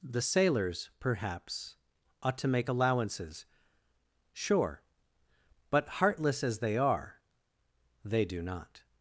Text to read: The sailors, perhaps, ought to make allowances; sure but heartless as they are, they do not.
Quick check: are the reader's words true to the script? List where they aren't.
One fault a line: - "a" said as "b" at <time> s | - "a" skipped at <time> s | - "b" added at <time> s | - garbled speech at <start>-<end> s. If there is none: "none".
none